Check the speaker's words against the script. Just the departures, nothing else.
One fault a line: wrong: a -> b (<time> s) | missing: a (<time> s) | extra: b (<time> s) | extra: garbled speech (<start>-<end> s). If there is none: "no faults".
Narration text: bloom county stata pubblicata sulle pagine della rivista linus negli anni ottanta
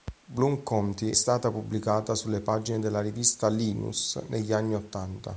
no faults